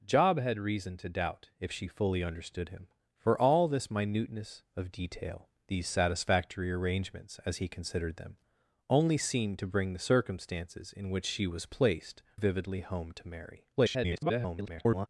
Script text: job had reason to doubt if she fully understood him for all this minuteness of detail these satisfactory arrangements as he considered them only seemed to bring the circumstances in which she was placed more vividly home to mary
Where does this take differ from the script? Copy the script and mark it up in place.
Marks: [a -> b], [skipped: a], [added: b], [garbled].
job had reason to doubt if she fully understood him for all this minuteness of detail these satisfactory arrangements as he considered them only seemed to bring the circumstances in which she was placed [skipped: more] vividly home to mary [garbled]